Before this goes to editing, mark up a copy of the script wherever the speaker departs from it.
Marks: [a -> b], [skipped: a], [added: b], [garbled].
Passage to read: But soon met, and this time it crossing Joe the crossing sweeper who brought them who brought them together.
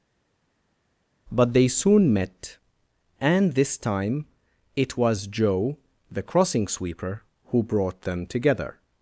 But [added: they] soon met, and this time it [crossing -> was] Joe the crossing sweeper who brought them [skipped: who brought them] together.